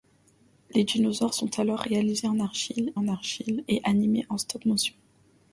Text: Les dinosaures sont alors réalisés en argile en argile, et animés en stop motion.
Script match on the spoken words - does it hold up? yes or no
yes